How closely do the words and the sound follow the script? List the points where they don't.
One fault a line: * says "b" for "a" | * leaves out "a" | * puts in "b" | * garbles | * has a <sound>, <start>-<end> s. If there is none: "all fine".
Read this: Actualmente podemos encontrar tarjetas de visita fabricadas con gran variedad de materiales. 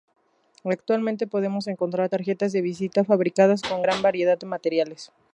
all fine